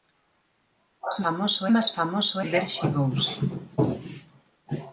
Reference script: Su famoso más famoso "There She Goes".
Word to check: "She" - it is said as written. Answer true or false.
true